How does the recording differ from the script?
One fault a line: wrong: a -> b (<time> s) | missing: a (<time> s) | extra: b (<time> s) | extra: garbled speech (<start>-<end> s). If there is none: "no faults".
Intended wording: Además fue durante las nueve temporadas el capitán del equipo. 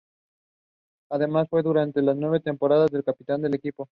no faults